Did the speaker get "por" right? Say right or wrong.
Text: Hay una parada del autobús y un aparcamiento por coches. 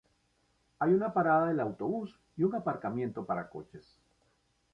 wrong